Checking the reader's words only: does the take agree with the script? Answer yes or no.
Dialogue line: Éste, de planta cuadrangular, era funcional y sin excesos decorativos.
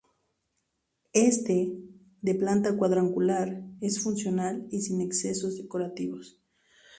no